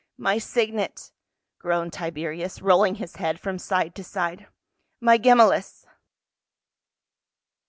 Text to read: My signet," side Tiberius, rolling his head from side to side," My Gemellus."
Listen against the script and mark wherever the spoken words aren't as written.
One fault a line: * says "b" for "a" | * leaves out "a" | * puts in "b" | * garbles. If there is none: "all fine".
* says "groaned" for "side"